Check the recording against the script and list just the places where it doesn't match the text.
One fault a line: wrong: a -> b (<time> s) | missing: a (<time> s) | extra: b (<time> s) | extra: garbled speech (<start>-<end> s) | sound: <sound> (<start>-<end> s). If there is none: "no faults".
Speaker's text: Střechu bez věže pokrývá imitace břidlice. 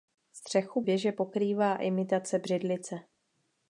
missing: bez (0.8 s)